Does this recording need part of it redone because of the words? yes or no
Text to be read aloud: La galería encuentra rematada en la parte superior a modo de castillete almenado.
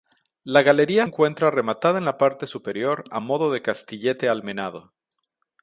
no